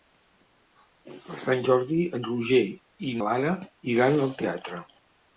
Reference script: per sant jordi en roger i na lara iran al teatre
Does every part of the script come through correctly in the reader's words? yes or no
no